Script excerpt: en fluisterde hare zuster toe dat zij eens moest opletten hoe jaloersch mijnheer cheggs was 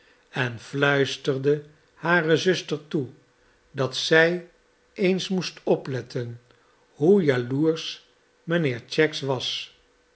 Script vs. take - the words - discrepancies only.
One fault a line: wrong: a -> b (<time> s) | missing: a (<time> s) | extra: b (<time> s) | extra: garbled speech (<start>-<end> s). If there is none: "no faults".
no faults